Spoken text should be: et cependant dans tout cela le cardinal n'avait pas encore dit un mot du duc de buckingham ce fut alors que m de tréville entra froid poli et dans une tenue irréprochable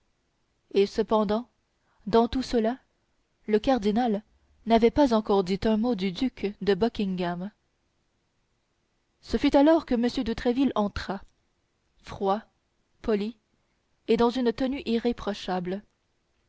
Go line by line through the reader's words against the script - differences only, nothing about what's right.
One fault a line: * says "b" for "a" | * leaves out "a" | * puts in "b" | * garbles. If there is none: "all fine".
all fine